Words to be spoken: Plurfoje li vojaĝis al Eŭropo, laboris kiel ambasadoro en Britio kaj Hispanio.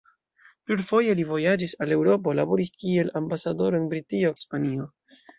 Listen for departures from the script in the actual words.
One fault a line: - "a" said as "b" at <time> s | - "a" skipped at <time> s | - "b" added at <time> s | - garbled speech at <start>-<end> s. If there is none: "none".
- "kaj" skipped at 4.4 s